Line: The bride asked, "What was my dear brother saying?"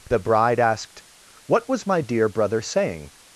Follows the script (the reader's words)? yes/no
yes